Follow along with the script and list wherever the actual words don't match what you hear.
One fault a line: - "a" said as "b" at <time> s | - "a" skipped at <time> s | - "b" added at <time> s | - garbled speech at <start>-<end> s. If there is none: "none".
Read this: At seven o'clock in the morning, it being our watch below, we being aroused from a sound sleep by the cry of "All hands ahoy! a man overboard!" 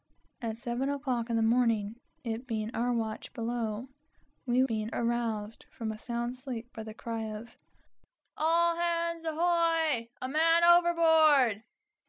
none